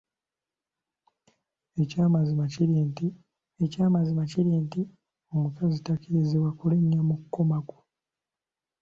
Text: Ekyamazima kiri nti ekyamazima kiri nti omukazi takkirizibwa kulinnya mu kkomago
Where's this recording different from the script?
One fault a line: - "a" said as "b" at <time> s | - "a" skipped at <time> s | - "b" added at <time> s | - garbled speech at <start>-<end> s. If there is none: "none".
none